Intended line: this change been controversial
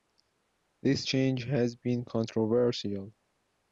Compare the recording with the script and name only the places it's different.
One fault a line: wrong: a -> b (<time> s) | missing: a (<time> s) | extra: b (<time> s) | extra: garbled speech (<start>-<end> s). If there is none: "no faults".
extra: has (1.4 s)